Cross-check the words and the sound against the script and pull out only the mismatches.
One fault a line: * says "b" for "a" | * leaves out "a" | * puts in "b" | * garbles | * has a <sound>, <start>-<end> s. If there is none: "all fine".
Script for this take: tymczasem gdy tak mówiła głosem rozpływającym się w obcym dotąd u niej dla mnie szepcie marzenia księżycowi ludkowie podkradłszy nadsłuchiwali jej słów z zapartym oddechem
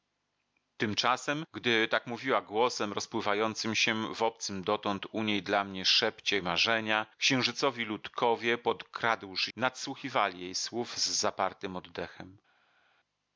all fine